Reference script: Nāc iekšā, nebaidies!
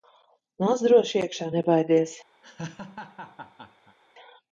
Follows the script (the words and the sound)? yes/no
no